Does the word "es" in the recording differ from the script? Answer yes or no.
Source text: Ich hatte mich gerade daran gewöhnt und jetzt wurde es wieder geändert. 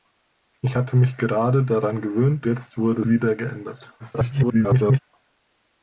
yes